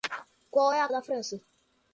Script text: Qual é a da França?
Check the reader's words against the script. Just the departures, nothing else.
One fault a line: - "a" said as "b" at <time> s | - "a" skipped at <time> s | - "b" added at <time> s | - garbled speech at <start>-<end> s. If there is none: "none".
none